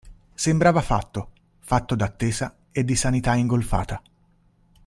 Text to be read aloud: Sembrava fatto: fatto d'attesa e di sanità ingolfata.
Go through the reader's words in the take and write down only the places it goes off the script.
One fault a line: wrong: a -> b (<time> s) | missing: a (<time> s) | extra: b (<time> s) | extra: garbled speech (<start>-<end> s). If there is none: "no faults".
no faults